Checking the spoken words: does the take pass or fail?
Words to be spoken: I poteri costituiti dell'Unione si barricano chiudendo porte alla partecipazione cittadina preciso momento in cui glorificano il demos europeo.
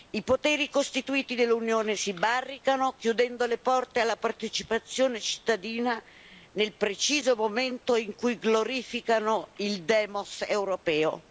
fail